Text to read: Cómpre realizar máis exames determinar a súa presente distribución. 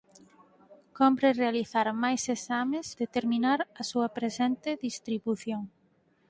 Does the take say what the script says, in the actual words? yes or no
yes